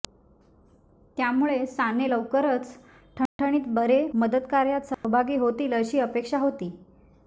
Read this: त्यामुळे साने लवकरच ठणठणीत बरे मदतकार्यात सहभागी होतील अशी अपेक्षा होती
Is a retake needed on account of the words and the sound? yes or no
yes